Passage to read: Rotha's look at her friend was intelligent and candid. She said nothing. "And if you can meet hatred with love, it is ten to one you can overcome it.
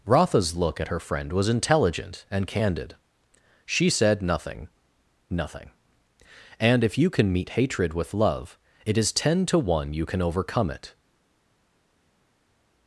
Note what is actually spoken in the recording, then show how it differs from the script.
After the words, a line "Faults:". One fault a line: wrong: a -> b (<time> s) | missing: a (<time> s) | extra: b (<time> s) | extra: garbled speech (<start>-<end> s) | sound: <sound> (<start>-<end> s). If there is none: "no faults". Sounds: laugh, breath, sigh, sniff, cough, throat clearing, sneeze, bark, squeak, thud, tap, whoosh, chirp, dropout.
Rotha's look at her friend was intelligent and candid. She said nothing nothing. "And if you can meet hatred with love, it is ten to one you can overcome it.
Faults:
extra: nothing (5.3 s)